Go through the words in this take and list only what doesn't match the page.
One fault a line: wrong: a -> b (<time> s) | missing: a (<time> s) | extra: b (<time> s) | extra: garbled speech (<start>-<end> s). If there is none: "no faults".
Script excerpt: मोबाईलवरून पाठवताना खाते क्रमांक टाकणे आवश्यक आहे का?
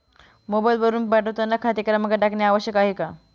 no faults